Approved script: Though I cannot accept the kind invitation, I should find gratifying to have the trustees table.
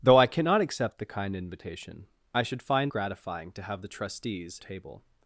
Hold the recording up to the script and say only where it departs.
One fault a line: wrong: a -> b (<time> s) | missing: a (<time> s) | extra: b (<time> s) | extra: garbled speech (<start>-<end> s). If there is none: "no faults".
no faults